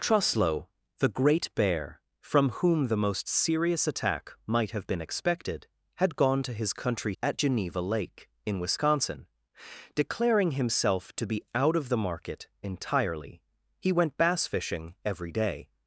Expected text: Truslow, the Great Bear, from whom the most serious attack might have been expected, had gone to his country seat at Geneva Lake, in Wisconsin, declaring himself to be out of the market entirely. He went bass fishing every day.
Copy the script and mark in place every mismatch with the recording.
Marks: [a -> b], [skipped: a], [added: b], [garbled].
Truslow, the Great Bear, from whom the most serious attack might have been expected, had gone to his country [skipped: seat] at Geneva Lake, in Wisconsin, declaring himself to be out of the market entirely. He went bass fishing every day.